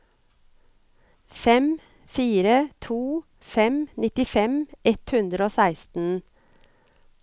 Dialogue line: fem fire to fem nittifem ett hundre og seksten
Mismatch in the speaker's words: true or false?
false